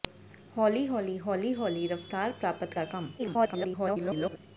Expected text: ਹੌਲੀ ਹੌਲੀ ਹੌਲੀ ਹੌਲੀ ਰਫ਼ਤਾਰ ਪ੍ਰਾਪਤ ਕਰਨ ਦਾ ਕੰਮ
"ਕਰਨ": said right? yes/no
no